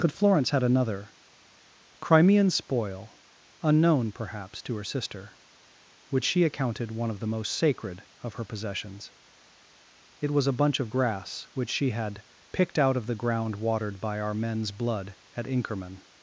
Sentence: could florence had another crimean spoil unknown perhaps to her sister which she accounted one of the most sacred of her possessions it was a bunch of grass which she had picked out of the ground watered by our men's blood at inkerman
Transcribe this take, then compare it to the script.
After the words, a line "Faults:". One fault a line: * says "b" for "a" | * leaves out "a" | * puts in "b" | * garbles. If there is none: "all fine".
could florence had another crimean spoil unknown perhaps to her sister which she accounted one of the most sacred of her possessions it was a bunch of grass which she had picked out of the ground watered by our men's blood at inkerman
Faults:
all fine